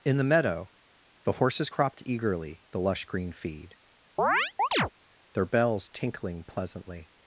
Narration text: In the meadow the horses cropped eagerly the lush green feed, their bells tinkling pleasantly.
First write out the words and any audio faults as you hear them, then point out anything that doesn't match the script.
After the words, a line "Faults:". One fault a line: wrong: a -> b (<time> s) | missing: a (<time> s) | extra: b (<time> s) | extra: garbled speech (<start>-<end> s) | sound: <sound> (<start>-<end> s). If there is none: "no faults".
In the meadow the horses cropped eagerly the lush green feed, their bells tinkling pleasantly.
Faults:
sound: chirp (4.2-4.9 s)